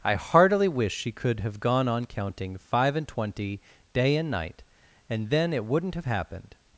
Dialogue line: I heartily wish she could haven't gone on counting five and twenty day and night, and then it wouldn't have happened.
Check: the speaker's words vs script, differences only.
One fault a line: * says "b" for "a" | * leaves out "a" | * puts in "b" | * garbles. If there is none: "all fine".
* says "have" for "haven't"